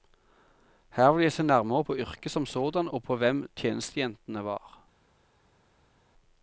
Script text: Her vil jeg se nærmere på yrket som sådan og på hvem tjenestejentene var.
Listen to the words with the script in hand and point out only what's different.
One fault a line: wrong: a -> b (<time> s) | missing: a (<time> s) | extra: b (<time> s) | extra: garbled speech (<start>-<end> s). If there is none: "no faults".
no faults